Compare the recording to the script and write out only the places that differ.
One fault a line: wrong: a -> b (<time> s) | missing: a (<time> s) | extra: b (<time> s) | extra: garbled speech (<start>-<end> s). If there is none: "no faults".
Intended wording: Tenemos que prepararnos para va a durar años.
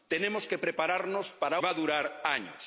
no faults